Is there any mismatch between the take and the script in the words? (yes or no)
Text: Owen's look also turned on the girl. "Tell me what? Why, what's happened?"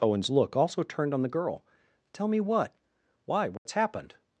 no